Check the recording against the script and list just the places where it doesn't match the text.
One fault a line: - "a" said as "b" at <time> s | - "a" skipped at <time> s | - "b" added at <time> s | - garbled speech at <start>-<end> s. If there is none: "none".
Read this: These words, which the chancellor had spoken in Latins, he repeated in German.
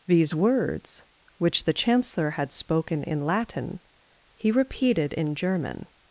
- "Latins" said as "Latin" at 3.2 s